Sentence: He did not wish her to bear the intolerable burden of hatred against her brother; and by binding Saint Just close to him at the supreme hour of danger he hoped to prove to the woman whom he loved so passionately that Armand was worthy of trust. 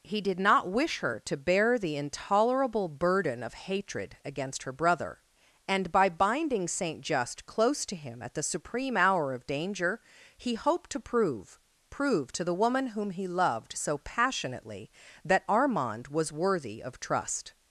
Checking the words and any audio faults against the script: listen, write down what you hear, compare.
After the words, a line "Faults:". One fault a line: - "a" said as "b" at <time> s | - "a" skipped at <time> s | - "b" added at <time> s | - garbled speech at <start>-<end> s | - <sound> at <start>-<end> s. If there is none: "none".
He did not wish her to bear the intolerable burden of hatred against her brother; and by binding Saint Just close to him at the supreme hour of danger he hoped to prove prove to the woman whom he loved so passionately that Armand was worthy of trust.
Faults:
- "prove" added at 11.9 s